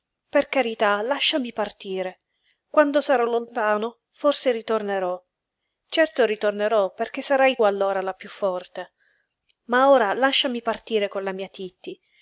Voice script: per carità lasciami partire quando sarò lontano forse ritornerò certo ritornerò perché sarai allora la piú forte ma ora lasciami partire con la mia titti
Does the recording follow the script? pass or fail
pass